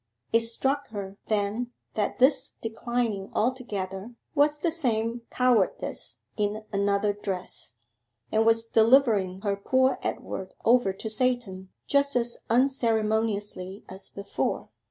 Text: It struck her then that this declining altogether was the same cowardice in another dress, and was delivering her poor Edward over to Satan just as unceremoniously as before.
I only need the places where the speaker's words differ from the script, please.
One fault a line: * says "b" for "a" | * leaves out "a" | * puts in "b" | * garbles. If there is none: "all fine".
all fine